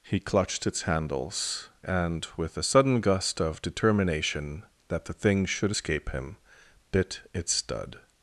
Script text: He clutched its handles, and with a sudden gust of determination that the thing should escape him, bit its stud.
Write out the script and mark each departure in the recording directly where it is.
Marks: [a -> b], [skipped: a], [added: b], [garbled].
He clutched its handles, and with a sudden gust of determination that the thing should escape him, bit its stud.